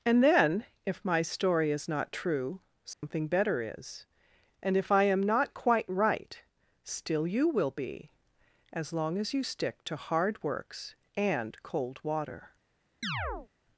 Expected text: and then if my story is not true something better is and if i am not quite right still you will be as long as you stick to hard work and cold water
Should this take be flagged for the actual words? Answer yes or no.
yes